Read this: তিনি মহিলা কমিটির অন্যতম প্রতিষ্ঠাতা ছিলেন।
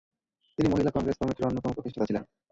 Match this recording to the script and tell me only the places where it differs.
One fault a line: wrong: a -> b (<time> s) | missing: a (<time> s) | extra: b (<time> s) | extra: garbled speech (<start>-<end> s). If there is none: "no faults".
extra: কংগ্রেস (0.9 s)